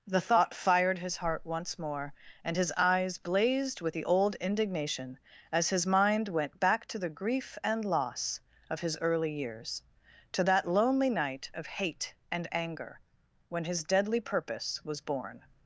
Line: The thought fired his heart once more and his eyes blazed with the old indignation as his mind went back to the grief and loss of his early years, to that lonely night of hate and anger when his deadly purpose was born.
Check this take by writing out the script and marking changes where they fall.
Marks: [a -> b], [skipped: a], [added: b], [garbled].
The thought fired his heart once more and his eyes blazed with the old indignation as his mind went back to the grief and loss of his early years, to that lonely night of hate and anger when his deadly purpose was born.